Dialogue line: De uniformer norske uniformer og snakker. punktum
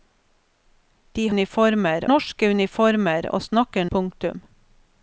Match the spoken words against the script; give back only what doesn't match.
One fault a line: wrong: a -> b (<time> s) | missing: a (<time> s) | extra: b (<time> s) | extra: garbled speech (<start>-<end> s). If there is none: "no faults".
no faults